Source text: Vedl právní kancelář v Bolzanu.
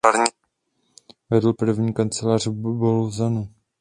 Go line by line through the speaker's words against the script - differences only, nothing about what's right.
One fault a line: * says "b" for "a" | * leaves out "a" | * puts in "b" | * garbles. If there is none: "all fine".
all fine